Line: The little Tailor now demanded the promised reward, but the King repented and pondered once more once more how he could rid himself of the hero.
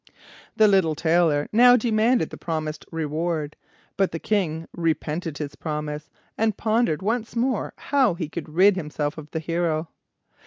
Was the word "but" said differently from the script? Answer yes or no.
no